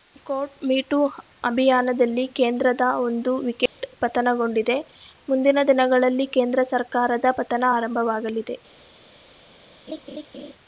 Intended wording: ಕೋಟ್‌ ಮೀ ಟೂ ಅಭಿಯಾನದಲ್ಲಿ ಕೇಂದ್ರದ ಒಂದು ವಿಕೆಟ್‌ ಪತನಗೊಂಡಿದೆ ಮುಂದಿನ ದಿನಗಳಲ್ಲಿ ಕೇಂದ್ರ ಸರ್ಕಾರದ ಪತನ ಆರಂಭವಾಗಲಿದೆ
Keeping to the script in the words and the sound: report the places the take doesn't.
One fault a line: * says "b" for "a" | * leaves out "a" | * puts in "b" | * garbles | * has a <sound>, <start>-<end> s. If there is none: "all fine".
* has a dropout, 3.7-3.8 s
* has a laugh, 9.9-10.5 s